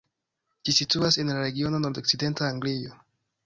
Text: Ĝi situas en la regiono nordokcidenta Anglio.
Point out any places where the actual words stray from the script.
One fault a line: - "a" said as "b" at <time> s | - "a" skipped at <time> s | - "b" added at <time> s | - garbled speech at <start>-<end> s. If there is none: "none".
none